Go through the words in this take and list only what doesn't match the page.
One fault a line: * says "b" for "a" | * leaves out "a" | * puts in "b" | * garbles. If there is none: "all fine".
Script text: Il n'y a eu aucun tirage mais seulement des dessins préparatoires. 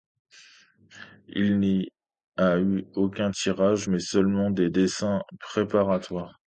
all fine